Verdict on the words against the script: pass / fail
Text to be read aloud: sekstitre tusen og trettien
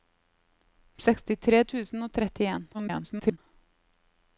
fail